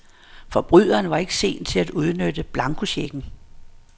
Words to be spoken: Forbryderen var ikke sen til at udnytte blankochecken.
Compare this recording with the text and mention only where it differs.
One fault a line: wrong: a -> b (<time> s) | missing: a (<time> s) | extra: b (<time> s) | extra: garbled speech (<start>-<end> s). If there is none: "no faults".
no faults